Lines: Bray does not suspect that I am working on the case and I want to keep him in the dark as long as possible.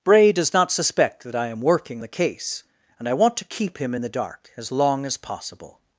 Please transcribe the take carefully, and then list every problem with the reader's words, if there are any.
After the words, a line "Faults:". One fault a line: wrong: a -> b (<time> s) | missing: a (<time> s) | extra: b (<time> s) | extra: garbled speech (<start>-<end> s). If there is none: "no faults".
Bray does not suspect that I am working the case and I want to keep him in the dark as long as possible.
Faults:
missing: on (2.0 s)